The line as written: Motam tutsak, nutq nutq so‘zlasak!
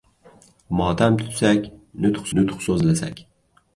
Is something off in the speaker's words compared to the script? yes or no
no